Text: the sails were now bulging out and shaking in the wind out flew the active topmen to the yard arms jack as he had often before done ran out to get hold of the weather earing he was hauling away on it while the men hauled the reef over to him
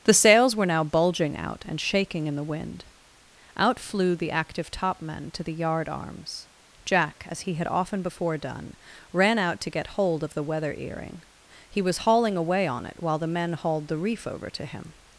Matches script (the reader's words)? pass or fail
pass